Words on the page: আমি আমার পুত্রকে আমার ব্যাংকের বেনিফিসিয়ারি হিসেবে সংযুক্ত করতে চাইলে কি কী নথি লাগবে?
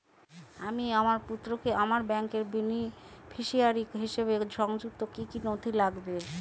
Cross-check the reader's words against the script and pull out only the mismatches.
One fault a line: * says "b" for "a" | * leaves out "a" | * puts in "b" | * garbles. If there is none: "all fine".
* leaves out "করতে চাইলে"